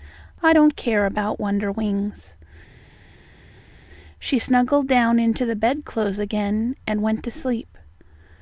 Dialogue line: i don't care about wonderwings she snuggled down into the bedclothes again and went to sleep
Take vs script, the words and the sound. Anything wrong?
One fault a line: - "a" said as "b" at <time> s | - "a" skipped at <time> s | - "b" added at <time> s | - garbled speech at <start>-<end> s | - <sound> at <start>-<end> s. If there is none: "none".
none